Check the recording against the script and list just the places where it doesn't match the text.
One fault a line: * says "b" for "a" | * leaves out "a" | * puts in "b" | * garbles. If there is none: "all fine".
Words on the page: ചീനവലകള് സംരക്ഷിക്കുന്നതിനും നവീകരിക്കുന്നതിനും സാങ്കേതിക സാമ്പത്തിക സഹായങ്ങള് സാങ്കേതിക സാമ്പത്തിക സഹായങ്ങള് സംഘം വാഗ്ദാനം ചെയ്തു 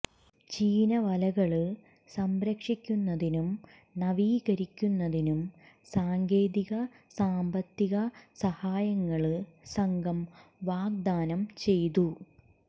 * leaves out "സാങ്കേതിക സാമ്പത്തിക സഹായങ്ങള്"